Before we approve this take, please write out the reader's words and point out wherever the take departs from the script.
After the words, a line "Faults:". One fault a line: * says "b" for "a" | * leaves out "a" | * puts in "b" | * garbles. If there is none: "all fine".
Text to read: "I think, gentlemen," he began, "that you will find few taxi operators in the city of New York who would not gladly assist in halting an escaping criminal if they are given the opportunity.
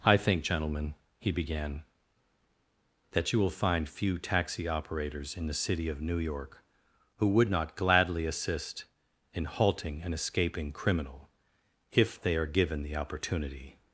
"I think, gentlemen," he began, "that you will find few taxi operators in the city of New York who would not gladly assist in halting an escaping criminal if they are given the opportunity.
Faults:
all fine